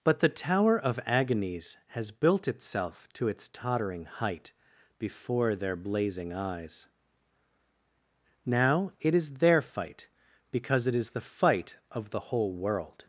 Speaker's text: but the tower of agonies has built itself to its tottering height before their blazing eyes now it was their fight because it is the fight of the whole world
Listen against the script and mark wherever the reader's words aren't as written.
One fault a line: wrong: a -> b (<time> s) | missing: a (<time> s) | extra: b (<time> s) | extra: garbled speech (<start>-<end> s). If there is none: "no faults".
wrong: was -> is (9.1 s)